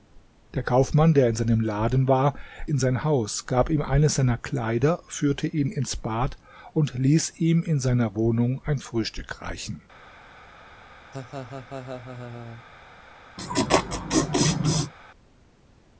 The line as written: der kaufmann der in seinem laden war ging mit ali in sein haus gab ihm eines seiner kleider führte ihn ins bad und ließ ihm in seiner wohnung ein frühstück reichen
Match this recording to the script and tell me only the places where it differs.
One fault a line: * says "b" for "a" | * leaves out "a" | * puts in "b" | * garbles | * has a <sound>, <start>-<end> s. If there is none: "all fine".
* leaves out "ging mit ali"
* has a laugh, 11.1-12.6 s
* has a laugh, 13.4-14.9 s